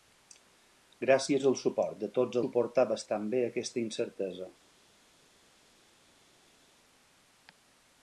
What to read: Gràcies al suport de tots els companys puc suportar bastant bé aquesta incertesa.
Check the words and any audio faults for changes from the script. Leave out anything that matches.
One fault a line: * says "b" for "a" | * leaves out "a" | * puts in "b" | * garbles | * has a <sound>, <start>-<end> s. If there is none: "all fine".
* leaves out "els companys puc"